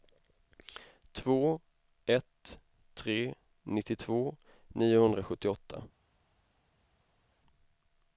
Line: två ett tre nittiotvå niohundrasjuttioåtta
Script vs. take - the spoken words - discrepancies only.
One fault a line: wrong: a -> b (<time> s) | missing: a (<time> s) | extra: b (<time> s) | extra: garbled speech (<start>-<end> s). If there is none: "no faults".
no faults